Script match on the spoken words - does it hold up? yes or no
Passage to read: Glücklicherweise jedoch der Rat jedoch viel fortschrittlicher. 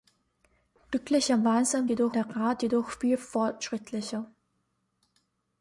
yes